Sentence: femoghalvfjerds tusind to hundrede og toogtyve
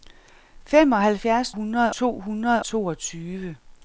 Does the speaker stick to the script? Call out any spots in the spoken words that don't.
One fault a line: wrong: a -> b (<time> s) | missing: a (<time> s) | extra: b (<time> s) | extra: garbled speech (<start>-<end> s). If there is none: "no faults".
wrong: tusind -> hundrede (1.5 s)
missing: og (2.6 s)